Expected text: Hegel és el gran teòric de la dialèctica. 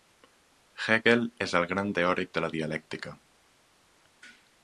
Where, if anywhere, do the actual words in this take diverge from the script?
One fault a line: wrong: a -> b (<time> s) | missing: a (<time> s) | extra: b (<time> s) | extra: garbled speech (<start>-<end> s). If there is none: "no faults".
no faults